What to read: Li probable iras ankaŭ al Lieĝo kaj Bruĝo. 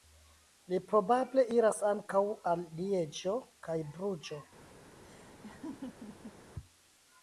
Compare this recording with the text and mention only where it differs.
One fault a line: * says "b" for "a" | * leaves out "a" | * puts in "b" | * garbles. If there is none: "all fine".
all fine